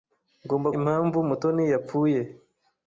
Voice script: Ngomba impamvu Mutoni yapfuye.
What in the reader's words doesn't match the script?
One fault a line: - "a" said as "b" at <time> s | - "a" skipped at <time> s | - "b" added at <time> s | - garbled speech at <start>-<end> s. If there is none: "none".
none